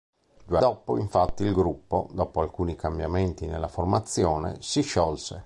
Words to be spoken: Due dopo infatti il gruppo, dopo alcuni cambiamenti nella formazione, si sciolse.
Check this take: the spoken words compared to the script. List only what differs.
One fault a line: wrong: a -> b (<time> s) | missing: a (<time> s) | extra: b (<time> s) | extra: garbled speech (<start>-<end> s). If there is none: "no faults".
no faults